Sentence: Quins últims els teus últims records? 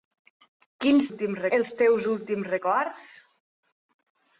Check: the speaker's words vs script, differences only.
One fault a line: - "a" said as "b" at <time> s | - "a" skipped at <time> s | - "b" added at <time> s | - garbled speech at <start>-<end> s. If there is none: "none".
none